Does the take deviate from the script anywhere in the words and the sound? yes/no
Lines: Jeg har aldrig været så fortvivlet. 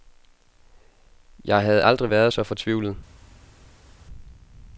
yes